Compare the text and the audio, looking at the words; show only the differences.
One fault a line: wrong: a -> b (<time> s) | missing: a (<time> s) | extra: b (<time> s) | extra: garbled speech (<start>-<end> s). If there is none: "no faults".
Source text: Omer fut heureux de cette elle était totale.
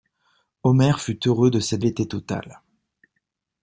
no faults